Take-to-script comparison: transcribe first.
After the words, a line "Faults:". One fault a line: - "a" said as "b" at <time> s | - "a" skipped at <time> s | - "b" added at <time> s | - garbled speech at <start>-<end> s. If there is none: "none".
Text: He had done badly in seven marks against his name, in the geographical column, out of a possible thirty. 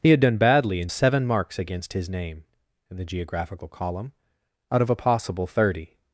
He had done badly in seven marks against his name, in the geographical column, out of a possible thirty.
Faults:
none